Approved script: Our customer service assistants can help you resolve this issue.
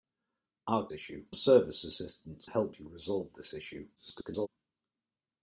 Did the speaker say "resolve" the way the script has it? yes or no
yes